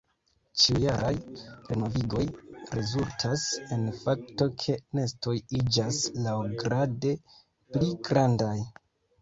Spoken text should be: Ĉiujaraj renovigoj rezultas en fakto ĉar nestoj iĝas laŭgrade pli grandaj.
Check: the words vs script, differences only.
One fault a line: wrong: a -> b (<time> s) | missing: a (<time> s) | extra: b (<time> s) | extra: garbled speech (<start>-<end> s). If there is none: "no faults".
wrong: ĉar -> ke (4.6 s)